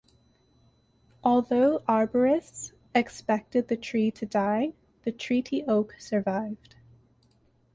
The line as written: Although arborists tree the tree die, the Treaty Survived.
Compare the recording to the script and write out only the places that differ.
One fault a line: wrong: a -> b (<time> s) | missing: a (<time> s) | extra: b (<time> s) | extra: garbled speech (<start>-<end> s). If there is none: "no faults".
wrong: tree -> expected (3.0 s)
extra: to (4.1 s)
extra: Oak (5.7 s)